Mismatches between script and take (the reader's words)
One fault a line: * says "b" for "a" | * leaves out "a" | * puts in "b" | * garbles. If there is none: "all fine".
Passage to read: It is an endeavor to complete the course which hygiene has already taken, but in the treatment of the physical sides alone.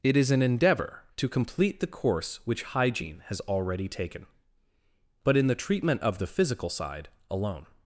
* says "side" for "sides"